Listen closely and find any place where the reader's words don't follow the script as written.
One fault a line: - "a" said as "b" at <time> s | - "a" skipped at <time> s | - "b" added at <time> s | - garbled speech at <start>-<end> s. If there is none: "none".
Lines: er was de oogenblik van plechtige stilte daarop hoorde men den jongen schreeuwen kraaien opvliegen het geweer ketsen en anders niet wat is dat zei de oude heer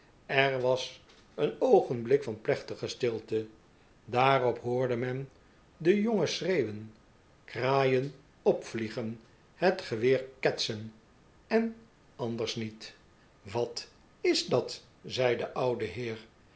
- "de" said as "een" at 1.4 s